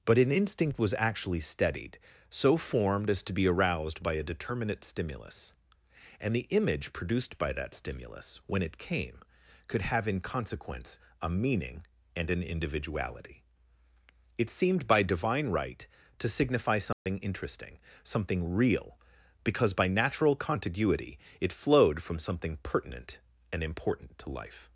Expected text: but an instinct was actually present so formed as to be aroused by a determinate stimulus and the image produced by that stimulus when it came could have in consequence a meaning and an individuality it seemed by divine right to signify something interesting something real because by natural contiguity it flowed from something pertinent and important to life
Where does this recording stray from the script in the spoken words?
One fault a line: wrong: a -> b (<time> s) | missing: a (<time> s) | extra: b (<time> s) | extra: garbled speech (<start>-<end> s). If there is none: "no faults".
wrong: present -> steadied (1.4 s)